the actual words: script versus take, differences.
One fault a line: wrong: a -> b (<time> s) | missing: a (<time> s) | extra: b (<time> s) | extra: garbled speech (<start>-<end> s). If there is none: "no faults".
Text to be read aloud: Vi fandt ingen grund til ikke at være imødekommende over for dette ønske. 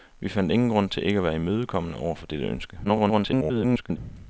extra: garbled speech (2.8-4.0 s)